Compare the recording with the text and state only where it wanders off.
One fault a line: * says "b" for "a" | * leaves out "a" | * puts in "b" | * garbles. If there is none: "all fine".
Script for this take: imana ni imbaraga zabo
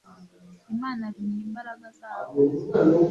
all fine